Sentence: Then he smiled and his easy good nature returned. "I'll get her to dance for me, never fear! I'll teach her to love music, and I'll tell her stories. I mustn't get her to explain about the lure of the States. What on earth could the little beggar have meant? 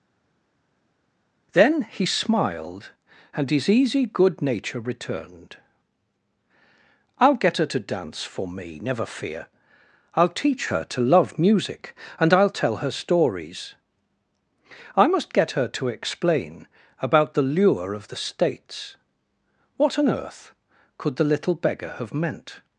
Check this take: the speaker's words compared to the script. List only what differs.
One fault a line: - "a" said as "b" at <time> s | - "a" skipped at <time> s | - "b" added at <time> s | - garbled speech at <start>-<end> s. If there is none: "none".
- "mustn't" said as "must" at 15.1 s